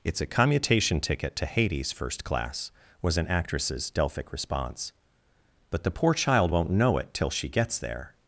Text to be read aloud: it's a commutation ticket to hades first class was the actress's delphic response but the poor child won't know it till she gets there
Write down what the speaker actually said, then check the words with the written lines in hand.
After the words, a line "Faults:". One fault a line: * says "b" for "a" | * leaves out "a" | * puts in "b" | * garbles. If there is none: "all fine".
it's a commutation ticket to hades first class was an actress's delphic response but the poor child won't know it till she gets there
Faults:
* says "an" for "the"